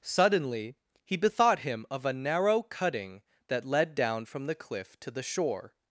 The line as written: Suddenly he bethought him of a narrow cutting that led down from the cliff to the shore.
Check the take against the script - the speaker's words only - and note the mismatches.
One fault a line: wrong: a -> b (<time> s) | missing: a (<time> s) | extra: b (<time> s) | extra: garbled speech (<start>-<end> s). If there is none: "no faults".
no faults